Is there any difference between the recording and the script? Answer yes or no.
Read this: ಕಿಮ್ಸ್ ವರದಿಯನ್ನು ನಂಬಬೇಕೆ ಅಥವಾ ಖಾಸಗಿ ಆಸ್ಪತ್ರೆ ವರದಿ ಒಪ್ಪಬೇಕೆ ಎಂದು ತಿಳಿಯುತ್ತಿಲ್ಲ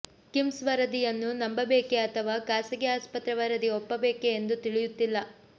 no